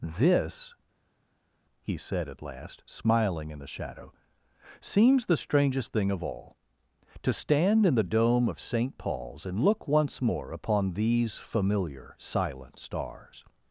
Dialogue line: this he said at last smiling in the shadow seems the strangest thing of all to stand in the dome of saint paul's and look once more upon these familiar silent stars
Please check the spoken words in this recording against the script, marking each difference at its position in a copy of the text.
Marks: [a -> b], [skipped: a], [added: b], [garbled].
this he said at last smiling in the shadow seems the strangest thing of all to stand in the dome of saint paul's and look once more upon these familiar silent stars